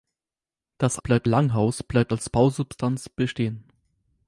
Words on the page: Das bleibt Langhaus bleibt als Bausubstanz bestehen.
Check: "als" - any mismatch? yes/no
no